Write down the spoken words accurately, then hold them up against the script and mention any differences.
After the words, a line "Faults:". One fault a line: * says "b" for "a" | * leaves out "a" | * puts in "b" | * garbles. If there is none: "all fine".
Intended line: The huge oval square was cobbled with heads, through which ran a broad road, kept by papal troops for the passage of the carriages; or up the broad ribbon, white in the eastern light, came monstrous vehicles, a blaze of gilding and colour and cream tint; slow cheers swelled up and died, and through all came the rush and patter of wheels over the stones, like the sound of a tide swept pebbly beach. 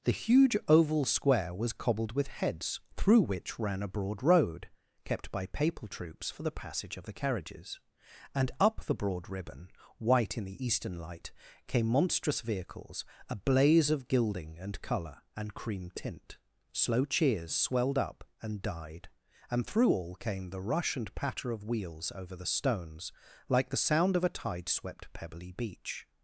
The huge oval square was cobbled with heads, through which ran a broad road, kept by papal troops for the passage of the carriages; and up the broad ribbon, white in the eastern light, came monstrous vehicles, a blaze of gilding and colour and cream tint; slow cheers swelled up and died, and through all came the rush and patter of wheels over the stones, like the sound of a tide swept pebbly beach.
Faults:
* says "and" for "or"